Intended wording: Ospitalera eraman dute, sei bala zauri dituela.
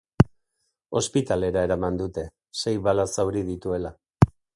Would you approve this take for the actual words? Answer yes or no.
yes